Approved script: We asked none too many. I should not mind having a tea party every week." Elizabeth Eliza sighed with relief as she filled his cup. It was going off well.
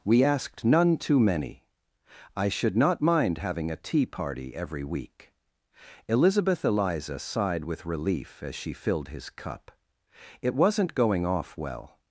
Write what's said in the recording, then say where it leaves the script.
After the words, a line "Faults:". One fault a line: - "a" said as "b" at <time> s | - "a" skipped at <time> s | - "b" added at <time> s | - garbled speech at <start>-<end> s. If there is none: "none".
We asked none too many. I should not mind having a tea party every week." Elizabeth Eliza sighed with relief as she filled his cup. It wasn't going off well.
Faults:
- "was" said as "wasn't" at 10.6 s